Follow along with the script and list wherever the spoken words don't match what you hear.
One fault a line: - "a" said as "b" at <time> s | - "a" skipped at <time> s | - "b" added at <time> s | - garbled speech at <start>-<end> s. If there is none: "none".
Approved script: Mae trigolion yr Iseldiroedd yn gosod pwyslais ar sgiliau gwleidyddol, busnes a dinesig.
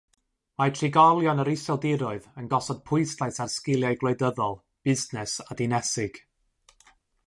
none